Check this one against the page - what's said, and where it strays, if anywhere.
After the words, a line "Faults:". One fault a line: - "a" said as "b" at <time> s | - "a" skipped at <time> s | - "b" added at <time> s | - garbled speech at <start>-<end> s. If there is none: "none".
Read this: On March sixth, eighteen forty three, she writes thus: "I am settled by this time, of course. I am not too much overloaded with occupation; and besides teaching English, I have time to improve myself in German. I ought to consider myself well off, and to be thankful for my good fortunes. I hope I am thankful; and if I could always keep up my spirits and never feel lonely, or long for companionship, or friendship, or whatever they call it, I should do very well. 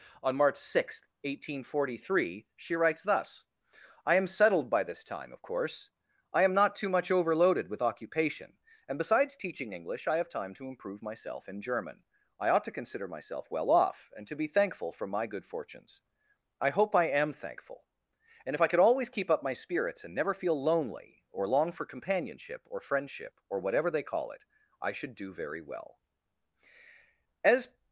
On March sixth, eighteen forty three, she writes thus: "I am settled by this time, of course. I am not too much overloaded with occupation; and besides teaching English, I have time to improve myself in German. I ought to consider myself well off, and to be thankful for my good fortunes. I hope I am thankful; and if I could always keep up my spirits and never feel lonely, or long for companionship, or friendship, or whatever they call it, I should do very well. As
Faults:
- "As" added at 27.4 s